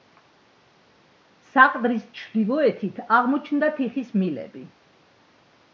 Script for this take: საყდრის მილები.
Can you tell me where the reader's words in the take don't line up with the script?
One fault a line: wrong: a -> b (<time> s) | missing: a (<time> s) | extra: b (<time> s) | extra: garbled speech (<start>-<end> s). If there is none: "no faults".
extra: ჩრდილოეთით აღმოჩნდა თიხის (2.2 s)